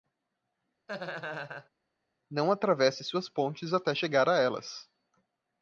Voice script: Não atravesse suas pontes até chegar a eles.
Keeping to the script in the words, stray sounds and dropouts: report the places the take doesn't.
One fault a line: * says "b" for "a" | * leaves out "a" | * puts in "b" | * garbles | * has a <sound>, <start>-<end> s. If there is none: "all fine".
* has a laugh, 0.9-1.7 s
* says "elas" for "eles"